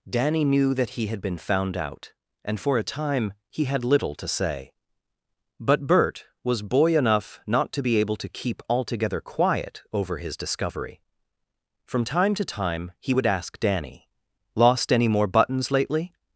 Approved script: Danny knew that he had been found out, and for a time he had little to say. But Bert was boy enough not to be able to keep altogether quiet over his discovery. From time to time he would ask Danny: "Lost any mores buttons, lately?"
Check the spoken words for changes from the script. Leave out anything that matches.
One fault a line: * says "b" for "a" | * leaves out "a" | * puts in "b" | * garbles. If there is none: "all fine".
* says "more" for "mores"